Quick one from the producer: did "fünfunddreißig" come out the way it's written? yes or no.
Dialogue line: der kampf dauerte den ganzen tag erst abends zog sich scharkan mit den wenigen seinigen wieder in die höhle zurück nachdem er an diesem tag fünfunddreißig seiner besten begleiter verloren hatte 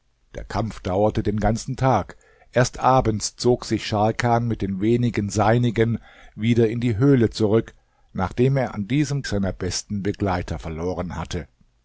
no